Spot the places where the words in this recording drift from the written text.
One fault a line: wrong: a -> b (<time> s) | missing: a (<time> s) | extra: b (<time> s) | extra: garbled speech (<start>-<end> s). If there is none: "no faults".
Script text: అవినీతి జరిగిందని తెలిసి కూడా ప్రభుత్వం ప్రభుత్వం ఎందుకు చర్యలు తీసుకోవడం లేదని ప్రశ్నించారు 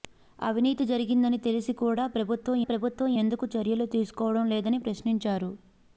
no faults